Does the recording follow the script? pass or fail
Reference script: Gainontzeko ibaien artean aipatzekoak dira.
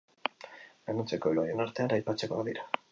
pass